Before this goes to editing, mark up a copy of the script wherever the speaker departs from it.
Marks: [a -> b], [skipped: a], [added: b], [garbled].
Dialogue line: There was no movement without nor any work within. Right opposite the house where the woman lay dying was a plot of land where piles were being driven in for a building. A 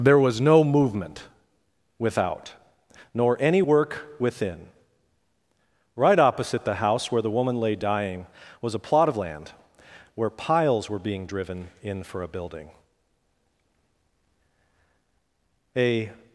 There was no movement without nor any work within. Right opposite the house where the woman lay dying was a plot of land where piles were being driven in for a building. A